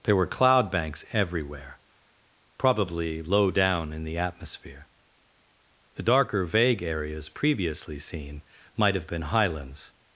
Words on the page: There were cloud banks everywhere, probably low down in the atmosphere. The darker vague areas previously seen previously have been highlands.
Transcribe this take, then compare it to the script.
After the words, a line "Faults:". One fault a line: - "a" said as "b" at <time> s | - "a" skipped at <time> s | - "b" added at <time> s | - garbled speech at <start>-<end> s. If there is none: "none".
There were cloud banks everywhere, probably low down in the atmosphere. The darker vague areas previously seen might have been highlands.
Faults:
- "previously" said as "might" at 8.8 s